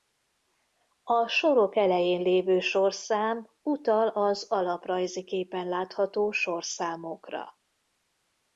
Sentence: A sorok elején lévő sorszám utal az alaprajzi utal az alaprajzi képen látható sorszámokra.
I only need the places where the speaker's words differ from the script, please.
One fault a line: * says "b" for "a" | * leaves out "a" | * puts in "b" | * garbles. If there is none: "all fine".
* leaves out "utal az alaprajzi"